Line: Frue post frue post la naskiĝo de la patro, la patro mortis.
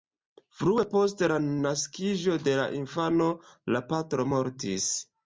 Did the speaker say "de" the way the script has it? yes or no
yes